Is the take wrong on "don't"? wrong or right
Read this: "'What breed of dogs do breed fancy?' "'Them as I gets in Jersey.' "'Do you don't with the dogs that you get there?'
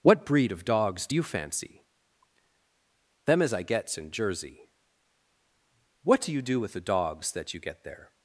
wrong